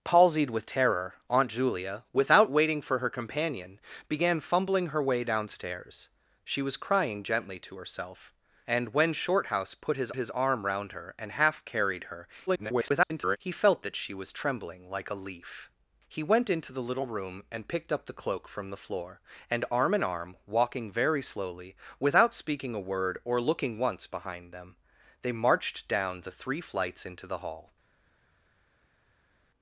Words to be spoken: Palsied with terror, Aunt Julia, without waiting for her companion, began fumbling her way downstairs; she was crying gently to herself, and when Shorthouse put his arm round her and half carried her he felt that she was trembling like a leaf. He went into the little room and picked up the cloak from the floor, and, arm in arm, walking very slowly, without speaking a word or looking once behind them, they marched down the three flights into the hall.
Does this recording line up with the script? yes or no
no